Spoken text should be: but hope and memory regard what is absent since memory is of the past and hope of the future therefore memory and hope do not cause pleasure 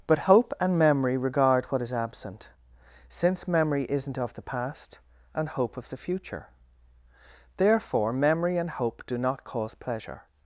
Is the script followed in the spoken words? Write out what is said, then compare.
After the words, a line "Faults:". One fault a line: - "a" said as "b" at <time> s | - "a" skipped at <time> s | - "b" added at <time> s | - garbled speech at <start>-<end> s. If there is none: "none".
but hope and memory regard what is absent since memory isn't of the past and hope of the future therefore memory and hope do not cause pleasure
Faults:
- "is" said as "isn't" at 3.9 s